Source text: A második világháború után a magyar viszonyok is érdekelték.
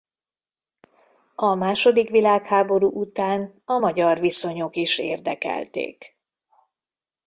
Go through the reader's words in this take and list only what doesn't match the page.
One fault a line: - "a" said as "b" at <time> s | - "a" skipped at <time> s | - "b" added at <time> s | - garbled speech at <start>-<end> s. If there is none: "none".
none